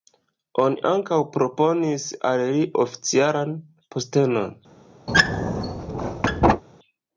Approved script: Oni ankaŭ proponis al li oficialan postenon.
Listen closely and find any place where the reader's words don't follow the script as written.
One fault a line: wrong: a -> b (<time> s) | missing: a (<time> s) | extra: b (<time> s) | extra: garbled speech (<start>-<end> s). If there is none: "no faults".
no faults